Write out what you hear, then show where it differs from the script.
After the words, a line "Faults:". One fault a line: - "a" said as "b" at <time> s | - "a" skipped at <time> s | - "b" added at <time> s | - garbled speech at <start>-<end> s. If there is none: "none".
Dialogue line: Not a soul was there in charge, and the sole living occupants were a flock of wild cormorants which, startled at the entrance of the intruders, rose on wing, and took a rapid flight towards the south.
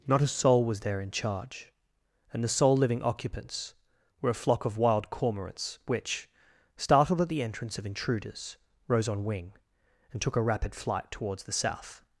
Not a soul was there in charge, and the sole living occupants were a flock of wild cormorants which, startled at the entrance of intruders, rose on wing, and took a rapid flight towards the south.
Faults:
- "the" skipped at 7.8 s